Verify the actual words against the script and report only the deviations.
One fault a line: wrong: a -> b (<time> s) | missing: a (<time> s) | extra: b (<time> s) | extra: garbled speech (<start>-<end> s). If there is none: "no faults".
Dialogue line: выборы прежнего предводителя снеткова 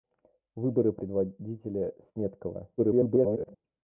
missing: прежнего (0.9 s)
extra: garbled speech (2.8-3.6 s)